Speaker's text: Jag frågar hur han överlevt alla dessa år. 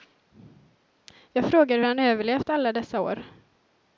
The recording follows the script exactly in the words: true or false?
true